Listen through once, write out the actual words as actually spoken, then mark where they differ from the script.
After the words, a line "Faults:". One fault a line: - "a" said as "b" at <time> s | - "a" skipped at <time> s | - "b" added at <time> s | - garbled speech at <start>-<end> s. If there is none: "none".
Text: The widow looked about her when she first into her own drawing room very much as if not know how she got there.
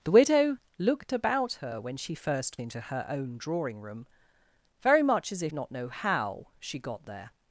The widow looked about her when she first into her own drawing room very much as if not know how she got there.
Faults:
none